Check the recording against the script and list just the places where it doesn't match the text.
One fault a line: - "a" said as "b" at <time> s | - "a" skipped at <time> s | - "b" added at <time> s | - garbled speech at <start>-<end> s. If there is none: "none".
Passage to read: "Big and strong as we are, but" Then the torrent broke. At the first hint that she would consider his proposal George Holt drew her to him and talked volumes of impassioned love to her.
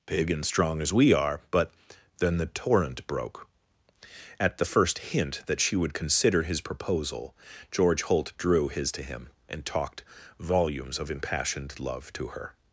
- "her" said as "his" at 8.7 s